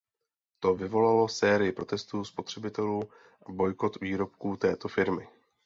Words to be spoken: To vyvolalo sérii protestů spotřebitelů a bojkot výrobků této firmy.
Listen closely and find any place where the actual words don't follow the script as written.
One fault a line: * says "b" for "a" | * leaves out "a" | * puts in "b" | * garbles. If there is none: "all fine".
all fine